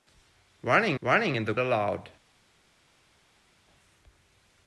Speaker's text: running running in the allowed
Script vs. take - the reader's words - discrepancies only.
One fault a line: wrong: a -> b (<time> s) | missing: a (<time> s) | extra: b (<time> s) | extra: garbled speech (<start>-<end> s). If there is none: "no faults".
no faults